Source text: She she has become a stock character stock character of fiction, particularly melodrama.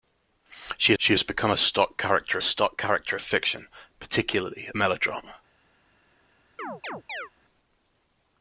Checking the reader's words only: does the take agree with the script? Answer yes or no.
yes